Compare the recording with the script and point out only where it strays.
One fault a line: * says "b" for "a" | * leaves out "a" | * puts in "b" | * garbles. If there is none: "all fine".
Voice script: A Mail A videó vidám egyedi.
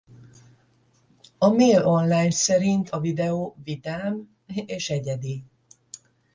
* puts in "Online szerint"
* puts in "és"